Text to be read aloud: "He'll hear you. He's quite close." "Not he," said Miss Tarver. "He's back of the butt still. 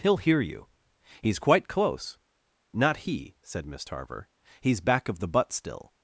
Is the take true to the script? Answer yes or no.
yes